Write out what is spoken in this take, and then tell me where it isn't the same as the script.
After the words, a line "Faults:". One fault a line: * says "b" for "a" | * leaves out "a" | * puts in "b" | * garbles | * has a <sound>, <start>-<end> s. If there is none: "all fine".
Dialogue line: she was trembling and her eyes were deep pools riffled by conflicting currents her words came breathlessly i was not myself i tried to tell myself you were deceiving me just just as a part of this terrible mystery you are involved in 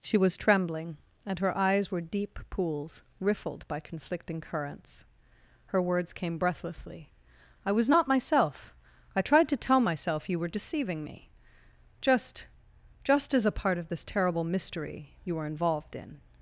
she was trembling and her eyes were deep pools riffled by conflicting currents her words came breathlessly i was not myself i tried to tell myself you were deceiving me just just as a part of this terrible mystery you were involved in
Faults:
* says "were" for "are"